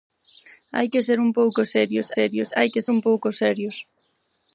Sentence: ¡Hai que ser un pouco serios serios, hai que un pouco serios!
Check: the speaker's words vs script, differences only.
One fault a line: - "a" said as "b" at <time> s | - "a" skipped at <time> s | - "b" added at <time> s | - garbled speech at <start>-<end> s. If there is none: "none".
none